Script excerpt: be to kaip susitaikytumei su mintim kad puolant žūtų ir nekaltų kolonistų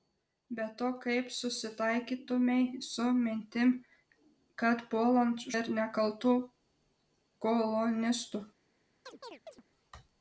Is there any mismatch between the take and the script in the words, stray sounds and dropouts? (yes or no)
yes